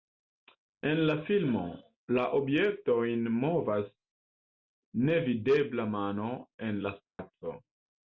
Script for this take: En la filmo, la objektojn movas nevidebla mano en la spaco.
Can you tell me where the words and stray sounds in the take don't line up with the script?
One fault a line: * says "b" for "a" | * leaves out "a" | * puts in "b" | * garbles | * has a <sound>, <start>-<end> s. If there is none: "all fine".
* has a dropout, 7.1-7.2 s